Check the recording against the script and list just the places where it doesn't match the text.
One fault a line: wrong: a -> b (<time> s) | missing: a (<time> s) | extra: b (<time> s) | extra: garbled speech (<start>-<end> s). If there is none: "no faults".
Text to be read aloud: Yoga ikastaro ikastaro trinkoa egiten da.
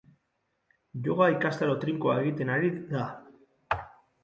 missing: ikastaro (1.8 s)
extra: ari (2.6 s)